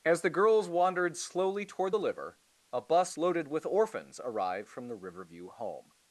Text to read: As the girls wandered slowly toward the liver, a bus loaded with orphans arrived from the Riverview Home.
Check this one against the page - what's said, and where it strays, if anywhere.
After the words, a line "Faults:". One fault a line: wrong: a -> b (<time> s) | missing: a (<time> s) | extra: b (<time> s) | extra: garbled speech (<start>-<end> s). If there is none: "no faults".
As the girls wandered slowly toward the liver, a bus loaded with orphans arrived from the Riverview Home.
Faults:
no faults